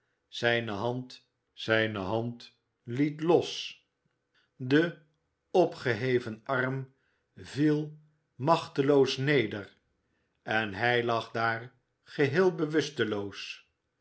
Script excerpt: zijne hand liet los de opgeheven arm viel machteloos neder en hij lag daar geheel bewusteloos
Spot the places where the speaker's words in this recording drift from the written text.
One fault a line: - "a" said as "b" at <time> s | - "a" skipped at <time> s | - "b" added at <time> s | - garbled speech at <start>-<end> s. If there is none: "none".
- "zijne hand" added at 1.5 s